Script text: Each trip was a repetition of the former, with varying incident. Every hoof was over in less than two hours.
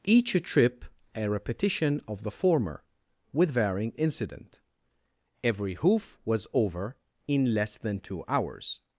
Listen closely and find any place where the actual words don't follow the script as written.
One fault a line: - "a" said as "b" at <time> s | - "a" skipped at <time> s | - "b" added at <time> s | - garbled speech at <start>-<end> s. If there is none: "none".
- "was" skipped at 0.8 s